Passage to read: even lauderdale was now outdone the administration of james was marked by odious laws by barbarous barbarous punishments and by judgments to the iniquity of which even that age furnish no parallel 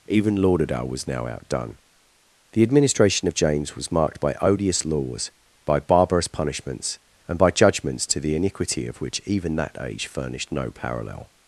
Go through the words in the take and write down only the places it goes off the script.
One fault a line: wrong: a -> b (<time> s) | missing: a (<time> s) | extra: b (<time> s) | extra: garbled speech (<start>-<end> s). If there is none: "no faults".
missing: barbarous (6.3 s)
wrong: furnish -> furnished (10.1 s)